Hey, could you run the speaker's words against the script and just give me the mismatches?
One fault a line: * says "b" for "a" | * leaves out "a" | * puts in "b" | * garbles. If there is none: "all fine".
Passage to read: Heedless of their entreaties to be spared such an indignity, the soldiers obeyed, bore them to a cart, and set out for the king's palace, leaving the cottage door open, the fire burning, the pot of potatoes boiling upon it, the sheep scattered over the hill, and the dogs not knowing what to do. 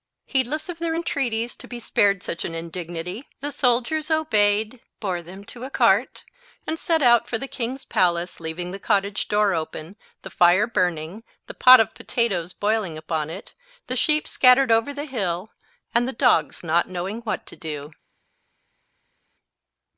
all fine